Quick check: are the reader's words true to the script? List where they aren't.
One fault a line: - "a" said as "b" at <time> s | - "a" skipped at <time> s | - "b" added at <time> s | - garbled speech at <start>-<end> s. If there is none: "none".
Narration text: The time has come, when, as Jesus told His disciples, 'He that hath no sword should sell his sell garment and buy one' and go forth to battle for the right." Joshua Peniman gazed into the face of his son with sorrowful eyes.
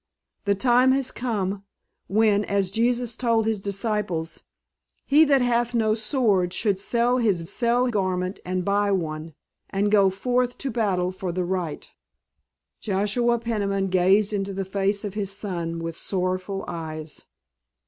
none